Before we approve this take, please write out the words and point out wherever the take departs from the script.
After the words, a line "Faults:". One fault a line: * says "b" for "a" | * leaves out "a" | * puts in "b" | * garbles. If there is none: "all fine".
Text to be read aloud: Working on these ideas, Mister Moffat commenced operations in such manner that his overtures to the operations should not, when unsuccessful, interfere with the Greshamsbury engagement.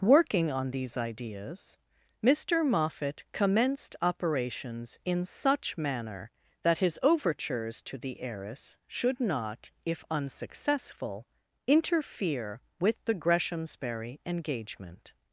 Working on these ideas, Mister Moffat commenced operations in such manner that his overtures to the heiress should not, if unsuccessful, interfere with the Greshamsbury engagement.
Faults:
* says "heiress" for "operations"
* says "if" for "when"